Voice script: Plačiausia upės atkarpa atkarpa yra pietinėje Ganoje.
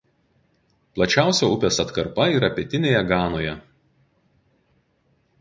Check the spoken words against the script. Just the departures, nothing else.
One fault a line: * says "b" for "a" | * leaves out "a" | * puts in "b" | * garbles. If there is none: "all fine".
* leaves out "atkarpa"